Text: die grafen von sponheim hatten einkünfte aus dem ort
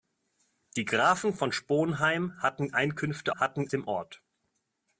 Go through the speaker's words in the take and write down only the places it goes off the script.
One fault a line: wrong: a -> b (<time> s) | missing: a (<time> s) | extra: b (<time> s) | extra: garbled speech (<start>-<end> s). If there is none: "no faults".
wrong: aus -> hatten (3.4 s)